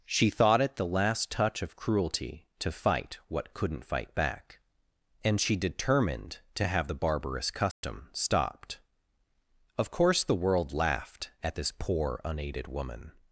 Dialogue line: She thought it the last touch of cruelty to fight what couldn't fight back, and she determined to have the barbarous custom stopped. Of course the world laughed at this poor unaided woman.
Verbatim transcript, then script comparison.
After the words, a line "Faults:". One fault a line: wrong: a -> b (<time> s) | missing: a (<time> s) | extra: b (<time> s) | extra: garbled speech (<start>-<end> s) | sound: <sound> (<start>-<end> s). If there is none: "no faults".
She thought it the last touch of cruelty to fight what couldn't fight back, and she determined to have the barbarous custom stopped. Of course the world laughed at this poor unaided woman.
Faults:
sound: dropout (7.7-7.8 s)